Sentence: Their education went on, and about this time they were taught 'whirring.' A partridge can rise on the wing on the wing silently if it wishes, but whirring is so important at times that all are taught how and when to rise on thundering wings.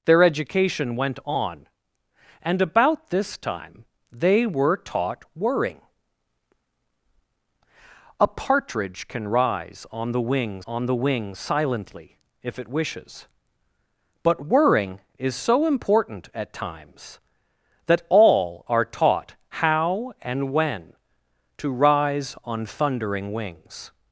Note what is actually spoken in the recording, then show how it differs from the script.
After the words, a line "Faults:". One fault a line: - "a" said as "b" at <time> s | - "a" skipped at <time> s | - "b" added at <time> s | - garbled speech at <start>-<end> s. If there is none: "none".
Their education went on, and about this time they were taught 'whirring.' A partridge can rise on the wing on the wing silently if it wishes, but whirring is so important at times that all are taught how and when to rise on thundering wings.
Faults:
none